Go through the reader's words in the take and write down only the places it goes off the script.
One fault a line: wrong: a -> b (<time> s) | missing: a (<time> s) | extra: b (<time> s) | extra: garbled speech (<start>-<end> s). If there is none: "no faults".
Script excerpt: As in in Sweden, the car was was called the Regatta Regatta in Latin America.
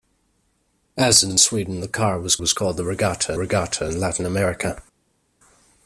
no faults